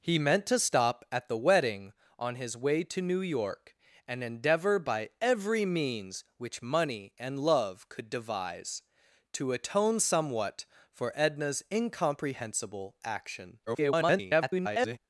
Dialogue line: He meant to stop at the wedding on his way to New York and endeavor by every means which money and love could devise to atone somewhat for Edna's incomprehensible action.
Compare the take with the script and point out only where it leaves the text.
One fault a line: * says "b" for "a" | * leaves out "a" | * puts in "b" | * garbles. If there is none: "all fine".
* garbles